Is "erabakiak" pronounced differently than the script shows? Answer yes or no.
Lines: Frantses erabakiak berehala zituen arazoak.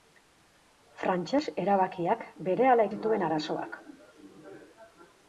no